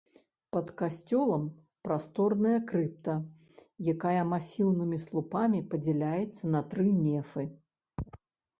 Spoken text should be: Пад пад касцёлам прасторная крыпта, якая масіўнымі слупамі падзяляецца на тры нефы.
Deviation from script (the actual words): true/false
true